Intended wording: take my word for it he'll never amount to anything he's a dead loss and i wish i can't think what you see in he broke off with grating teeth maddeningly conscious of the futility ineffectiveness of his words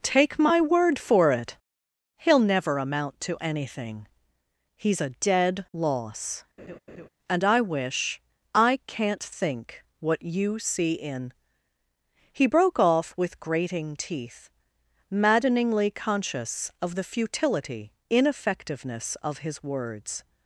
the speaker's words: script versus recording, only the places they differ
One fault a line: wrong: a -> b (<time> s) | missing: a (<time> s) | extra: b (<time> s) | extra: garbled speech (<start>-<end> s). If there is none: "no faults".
no faults